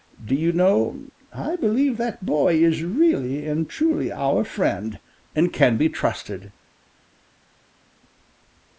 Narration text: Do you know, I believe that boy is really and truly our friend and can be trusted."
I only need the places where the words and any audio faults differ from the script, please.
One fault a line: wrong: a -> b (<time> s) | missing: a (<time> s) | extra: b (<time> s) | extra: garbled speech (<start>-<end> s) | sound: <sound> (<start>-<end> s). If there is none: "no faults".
no faults